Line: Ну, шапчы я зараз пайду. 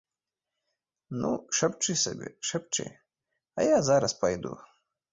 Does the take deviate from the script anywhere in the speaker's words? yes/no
yes